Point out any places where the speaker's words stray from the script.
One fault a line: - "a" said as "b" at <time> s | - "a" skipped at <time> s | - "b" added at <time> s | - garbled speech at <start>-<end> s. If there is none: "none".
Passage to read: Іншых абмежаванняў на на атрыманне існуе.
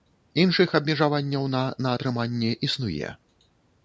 none